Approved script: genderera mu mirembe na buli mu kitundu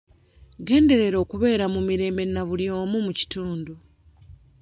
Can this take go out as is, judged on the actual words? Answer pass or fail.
fail